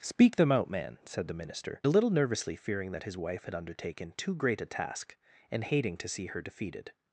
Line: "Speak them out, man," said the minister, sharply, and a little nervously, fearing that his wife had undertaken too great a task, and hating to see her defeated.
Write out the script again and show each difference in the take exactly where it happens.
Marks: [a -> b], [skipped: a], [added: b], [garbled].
"Speak them out, man," said the minister, [skipped: sharply, and] a little nervously, fearing that his wife had undertaken too great a task, and hating to see her defeated.